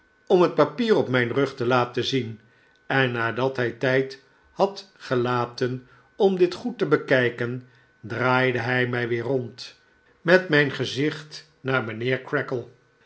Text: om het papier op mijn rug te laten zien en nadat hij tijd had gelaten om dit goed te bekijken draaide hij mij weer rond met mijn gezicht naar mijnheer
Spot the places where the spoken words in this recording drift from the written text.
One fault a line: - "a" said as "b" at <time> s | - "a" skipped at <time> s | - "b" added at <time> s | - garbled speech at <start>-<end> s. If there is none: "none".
none